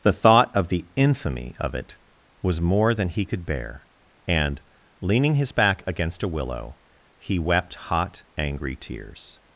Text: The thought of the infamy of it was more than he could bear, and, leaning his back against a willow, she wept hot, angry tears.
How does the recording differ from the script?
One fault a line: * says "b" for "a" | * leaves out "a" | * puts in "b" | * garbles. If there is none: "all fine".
* says "he" for "she"